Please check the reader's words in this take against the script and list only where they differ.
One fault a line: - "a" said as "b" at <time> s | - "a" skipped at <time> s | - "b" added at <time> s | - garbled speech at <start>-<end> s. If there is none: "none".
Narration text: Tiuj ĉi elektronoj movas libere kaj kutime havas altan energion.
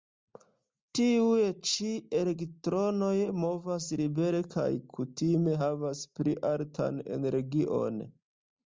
- "pli" added at 6.2 s